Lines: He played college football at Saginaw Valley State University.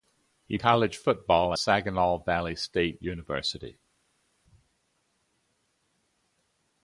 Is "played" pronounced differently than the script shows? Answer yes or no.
yes